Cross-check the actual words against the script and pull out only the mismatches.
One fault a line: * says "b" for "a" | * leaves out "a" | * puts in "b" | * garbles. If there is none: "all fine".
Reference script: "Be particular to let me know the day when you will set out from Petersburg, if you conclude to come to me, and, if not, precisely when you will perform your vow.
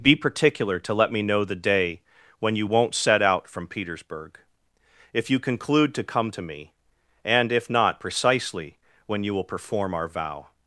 * says "won't" for "will"
* says "our" for "your"